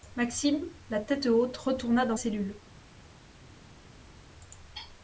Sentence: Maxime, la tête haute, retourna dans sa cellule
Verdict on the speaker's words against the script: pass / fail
fail